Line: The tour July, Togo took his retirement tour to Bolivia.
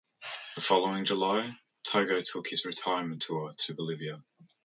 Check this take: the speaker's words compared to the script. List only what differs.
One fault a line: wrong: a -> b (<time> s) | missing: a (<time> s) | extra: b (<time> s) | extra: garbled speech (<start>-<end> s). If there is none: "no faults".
wrong: tour -> following (0.6 s)